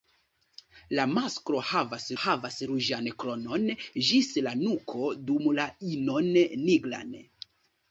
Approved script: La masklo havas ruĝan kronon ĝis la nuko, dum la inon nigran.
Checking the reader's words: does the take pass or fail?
fail